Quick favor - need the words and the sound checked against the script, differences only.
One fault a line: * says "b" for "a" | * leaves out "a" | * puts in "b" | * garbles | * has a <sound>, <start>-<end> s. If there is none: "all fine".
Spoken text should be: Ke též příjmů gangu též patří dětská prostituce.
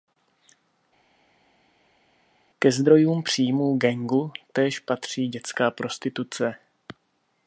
* says "zdrojům" for "též"